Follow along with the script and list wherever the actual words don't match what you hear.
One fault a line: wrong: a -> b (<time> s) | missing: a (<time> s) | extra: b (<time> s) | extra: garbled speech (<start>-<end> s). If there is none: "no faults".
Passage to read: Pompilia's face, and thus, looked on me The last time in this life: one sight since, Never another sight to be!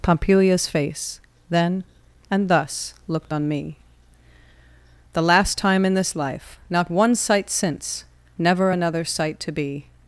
extra: then (1.5 s)
extra: not (6.7 s)